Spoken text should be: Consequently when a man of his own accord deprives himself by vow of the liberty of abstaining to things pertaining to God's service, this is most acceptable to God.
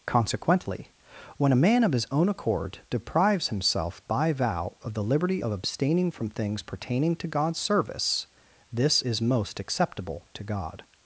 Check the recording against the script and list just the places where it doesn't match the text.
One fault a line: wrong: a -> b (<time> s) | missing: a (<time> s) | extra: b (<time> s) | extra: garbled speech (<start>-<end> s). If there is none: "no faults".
wrong: to -> from (6.1 s)